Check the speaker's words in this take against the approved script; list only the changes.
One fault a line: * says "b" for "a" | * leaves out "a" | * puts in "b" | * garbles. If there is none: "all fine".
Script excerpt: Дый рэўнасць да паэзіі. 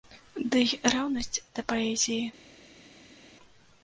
all fine